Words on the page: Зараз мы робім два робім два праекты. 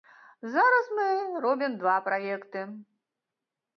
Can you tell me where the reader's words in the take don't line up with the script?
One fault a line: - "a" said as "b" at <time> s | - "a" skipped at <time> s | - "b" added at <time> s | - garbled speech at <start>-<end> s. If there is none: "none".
- "робім два" skipped at 2.0 s